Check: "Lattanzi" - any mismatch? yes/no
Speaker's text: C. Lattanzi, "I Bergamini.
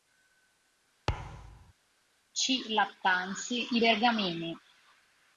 no